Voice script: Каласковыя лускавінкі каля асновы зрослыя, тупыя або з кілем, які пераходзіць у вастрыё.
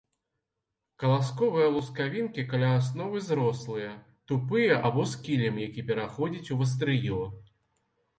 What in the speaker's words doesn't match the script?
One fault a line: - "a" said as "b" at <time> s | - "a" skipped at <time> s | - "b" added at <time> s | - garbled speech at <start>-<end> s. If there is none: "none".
none